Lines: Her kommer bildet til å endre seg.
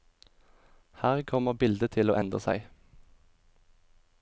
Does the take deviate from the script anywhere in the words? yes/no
no